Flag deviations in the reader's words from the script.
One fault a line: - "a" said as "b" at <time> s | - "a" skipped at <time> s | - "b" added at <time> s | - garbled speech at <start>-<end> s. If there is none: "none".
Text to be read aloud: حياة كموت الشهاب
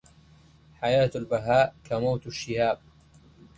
- "البهاء" added at 1.2 s